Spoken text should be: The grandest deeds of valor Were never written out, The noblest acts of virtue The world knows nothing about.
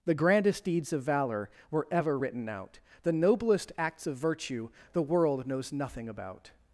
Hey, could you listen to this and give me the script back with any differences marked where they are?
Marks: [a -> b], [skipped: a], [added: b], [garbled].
The grandest deeds of valor Were [never -> ever] written out, The noblest acts of virtue The world knows nothing about.